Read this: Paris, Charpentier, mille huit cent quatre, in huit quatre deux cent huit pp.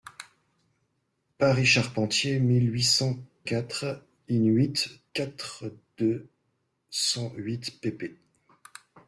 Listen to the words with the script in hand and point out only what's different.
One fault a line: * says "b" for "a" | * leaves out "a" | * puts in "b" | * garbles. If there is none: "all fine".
all fine